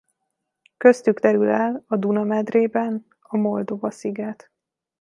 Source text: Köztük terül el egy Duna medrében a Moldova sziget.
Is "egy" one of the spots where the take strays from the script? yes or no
yes